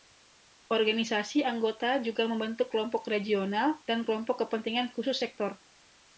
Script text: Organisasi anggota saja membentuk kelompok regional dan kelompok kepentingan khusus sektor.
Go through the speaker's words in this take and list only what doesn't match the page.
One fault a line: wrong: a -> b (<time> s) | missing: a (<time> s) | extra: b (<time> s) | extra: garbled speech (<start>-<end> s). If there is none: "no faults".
wrong: saja -> juga (2.0 s)